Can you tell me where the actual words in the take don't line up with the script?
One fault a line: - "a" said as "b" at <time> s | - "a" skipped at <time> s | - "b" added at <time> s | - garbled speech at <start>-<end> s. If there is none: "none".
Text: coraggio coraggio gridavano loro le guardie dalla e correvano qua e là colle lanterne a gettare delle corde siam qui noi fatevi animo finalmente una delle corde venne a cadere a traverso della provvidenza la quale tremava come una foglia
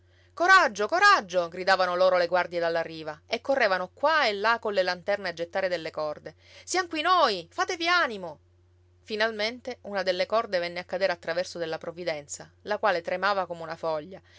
- "riva" added at 2.8 s